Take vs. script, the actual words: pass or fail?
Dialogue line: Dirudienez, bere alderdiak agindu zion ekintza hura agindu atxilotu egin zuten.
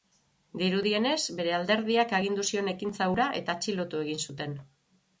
fail